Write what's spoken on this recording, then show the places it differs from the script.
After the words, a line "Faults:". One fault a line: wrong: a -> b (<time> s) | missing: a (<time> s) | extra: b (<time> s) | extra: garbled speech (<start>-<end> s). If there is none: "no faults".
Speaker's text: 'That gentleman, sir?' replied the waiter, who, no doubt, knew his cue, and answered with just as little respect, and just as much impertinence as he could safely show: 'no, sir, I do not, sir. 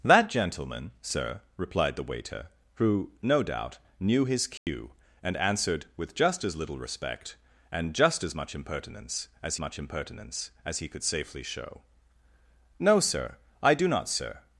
'That gentleman, sir?' replied the waiter, who, no doubt, knew his cue, and answered with just as little respect, and just as much impertinence as much impertinence as he could safely show: 'no, sir, I do not, sir.
Faults:
extra: much impertinence as (9.6 s)